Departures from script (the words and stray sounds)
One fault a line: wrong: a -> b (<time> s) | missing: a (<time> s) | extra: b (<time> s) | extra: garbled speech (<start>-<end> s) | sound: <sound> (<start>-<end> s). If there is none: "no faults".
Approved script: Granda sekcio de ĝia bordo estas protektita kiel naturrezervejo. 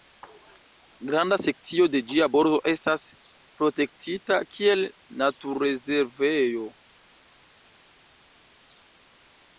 no faults